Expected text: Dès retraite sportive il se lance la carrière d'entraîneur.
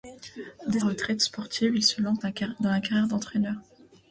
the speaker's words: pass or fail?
pass